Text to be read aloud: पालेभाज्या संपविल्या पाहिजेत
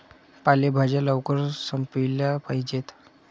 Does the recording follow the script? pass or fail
fail